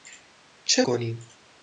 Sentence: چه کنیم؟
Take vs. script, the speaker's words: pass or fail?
pass